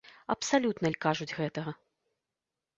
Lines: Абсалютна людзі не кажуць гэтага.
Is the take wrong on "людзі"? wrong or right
wrong